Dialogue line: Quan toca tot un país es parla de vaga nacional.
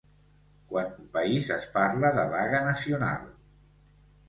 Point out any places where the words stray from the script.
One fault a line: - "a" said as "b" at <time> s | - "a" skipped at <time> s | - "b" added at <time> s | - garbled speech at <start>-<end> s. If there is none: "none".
- "toca tot" skipped at 0.9 s